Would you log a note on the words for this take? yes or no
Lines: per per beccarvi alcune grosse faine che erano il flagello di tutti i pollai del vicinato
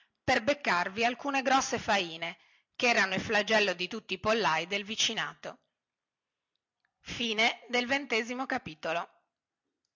yes